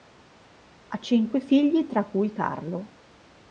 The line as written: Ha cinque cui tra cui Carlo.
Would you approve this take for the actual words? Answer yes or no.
no